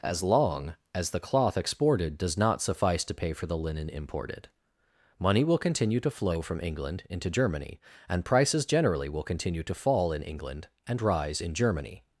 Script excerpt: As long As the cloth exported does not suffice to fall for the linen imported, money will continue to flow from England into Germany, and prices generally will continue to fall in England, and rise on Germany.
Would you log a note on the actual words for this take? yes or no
yes